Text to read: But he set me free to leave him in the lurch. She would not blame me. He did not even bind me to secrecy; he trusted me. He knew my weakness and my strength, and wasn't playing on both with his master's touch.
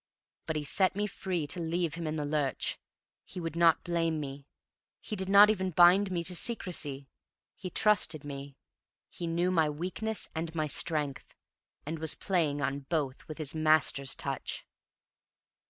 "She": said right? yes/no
no